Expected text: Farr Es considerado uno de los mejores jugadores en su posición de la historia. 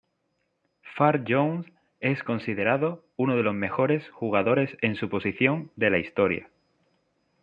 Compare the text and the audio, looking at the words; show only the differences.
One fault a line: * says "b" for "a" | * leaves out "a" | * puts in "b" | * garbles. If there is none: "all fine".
* puts in "Jones"